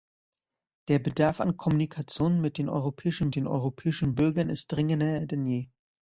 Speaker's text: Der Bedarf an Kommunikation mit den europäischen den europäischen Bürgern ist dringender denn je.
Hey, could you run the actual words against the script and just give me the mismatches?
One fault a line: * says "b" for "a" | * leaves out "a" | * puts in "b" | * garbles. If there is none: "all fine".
all fine